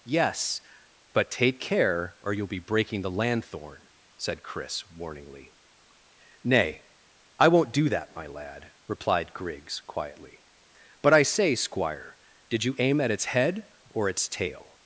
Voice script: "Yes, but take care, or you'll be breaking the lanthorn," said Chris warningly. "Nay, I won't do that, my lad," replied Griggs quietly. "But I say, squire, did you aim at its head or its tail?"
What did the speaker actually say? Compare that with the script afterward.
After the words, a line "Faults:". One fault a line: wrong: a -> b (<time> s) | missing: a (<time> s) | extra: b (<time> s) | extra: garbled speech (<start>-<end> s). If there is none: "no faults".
"Yes, but take care, or you'll be breaking the lanthorn," said Chris warningly. "Nay, I won't do that, my lad," replied Griggs quietly. "But I say, squire, did you aim at its head or its tail?"
Faults:
no faults